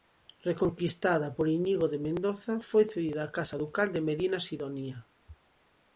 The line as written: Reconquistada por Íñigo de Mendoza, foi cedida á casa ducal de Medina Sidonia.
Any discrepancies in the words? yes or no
no